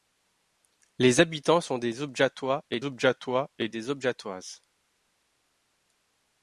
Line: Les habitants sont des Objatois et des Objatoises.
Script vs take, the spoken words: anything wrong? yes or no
yes